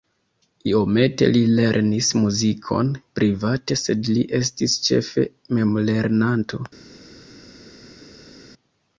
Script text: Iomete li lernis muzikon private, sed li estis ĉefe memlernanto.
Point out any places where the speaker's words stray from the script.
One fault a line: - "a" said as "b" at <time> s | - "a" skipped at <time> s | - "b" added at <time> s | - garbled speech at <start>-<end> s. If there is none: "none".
none